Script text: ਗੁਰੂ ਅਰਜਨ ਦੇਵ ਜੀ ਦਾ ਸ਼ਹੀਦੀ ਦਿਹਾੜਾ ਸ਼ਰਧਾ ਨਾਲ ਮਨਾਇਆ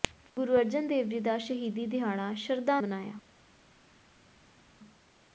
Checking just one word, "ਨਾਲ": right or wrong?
wrong